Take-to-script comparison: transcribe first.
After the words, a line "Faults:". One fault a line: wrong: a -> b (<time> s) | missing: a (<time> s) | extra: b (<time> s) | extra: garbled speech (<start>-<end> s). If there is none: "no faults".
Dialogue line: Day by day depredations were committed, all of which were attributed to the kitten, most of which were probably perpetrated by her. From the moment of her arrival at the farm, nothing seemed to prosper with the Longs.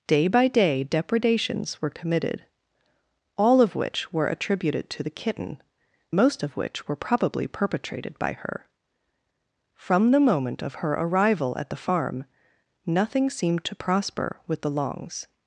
Day by day depredations were committed, all of which were attributed to the kitten, most of which were probably perpetrated by her. From the moment of her arrival at the farm, nothing seemed to prosper with the Longs.
Faults:
no faults